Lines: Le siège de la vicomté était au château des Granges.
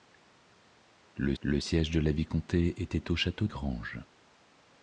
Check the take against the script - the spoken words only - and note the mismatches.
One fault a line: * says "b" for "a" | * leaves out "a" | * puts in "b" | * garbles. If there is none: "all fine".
* puts in "le"
* leaves out "des"